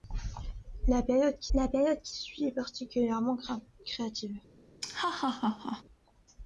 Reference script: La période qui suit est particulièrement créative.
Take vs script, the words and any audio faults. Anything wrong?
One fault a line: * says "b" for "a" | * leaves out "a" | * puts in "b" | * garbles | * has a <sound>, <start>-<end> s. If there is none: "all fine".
* puts in "la période qui"
* has a laugh, 4.8-5.8 s